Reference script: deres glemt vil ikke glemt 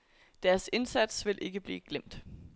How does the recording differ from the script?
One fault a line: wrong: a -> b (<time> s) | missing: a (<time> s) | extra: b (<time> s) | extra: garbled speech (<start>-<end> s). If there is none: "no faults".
wrong: glemt -> indsats (0.7 s)
extra: blive (1.6 s)